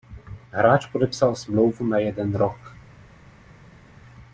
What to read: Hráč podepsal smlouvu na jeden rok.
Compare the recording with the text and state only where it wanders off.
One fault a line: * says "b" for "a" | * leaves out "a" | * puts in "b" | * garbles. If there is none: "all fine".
all fine